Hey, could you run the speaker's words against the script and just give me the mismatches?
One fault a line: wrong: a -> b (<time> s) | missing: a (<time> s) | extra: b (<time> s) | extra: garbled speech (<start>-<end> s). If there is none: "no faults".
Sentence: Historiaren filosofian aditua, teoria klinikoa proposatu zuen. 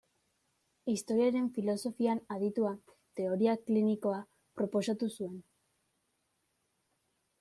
no faults